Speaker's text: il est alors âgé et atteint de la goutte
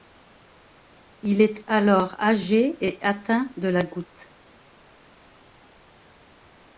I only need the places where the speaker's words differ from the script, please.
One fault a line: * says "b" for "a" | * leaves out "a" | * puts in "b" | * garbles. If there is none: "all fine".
all fine